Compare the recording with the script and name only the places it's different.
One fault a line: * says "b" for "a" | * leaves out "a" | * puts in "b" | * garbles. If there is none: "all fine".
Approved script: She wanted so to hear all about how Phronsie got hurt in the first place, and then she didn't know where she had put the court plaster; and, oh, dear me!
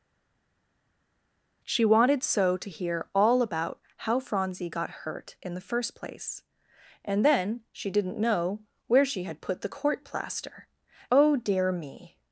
* leaves out "and"